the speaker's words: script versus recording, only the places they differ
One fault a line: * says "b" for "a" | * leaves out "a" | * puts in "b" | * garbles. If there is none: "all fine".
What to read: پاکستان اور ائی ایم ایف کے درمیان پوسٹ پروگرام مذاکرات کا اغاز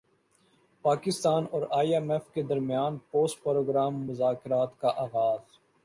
all fine